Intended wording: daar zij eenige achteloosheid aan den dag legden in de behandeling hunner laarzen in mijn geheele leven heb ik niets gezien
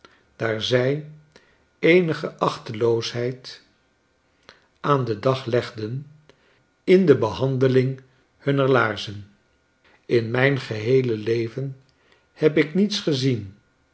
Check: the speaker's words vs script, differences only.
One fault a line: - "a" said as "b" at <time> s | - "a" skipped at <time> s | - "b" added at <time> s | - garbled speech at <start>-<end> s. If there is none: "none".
none